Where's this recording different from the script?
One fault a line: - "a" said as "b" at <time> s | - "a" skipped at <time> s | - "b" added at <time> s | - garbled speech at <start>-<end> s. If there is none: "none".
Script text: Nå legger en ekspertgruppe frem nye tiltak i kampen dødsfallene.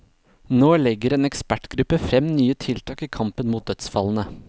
- "mot" added at 3.5 s